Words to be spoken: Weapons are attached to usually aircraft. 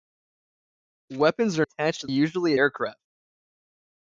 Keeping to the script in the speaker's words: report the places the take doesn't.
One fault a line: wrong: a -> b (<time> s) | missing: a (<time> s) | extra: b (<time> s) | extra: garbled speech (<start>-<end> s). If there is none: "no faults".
no faults